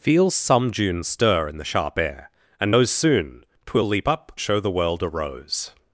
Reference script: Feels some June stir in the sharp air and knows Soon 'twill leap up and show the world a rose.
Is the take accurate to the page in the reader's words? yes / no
no